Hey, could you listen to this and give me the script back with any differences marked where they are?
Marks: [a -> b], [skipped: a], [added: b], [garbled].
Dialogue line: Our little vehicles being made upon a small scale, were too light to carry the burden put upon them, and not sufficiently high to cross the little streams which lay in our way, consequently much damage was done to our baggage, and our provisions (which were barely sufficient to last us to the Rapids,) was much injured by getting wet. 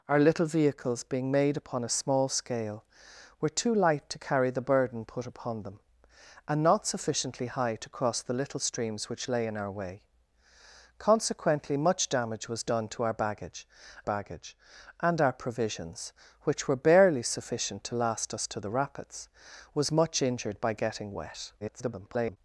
Our little vehicles being made upon a small scale, were too light to carry the burden put upon them, and not sufficiently high to cross the little streams which lay in our way, consequently much damage was done to our baggage, [added: baggage] and our provisions (which were barely sufficient to last us to the Rapids,) was much injured by getting wet. [garbled]